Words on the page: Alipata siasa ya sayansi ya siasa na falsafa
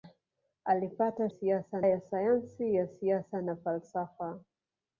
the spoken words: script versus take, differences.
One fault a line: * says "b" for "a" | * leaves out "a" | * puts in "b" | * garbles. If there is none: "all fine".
all fine